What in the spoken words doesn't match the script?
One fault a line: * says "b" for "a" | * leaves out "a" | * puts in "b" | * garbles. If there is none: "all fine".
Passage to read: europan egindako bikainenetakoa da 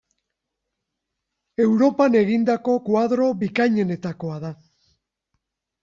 * puts in "koadro"